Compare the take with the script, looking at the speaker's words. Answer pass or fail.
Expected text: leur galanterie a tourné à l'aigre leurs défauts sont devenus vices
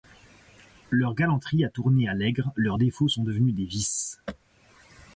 fail